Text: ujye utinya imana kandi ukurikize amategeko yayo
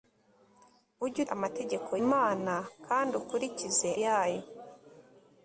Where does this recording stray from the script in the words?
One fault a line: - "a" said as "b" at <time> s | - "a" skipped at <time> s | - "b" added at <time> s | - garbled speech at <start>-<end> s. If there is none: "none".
- "utinya" said as "amategeko" at 1.3 s
- "amategeko" skipped at 3.9 s